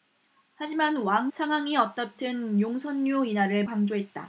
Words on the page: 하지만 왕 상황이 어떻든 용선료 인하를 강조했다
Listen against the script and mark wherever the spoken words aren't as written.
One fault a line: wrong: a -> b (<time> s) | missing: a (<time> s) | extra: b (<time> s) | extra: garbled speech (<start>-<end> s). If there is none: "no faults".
no faults